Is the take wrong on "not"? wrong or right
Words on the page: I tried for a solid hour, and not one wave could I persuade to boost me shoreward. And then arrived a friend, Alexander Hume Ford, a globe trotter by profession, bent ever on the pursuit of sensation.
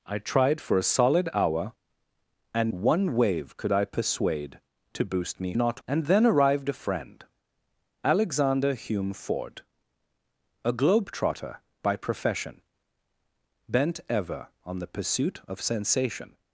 wrong